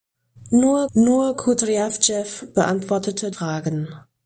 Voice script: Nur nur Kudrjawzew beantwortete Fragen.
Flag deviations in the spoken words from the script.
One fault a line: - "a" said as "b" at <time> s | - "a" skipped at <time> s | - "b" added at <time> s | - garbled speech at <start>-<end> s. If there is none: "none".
none